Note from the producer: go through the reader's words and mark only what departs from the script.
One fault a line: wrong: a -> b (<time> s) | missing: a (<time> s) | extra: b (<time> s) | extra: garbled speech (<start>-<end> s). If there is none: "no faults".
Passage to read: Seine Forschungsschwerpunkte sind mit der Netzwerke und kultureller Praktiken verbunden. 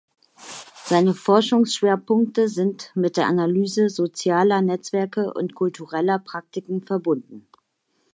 extra: Analyse sozialer (3.3 s)